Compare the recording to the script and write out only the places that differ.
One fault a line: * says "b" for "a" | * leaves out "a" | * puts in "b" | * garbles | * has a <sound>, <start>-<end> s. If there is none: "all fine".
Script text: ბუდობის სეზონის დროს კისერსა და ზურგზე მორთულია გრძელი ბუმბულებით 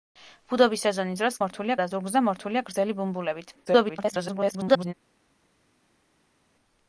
* says "მორთულია" for "კისერსა"
* garbles